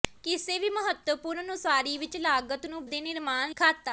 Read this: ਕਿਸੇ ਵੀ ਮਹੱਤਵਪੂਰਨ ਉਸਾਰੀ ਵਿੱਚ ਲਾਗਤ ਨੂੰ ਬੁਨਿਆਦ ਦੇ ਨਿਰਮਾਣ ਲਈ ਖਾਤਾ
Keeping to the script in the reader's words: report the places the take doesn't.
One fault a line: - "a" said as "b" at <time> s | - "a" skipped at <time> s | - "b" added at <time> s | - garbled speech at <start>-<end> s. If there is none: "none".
- "ਬੁਨਿਆਦ" skipped at 2.9 s
- "ਲਈ" skipped at 3.5 s